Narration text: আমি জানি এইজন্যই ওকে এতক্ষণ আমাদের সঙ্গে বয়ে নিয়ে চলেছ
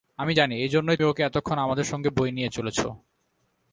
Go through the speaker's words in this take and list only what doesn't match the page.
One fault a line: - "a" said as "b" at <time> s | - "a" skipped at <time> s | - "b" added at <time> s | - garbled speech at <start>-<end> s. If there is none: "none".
none